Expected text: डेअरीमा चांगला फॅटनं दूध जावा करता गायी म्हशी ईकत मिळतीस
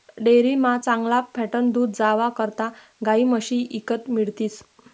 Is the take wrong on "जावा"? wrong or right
right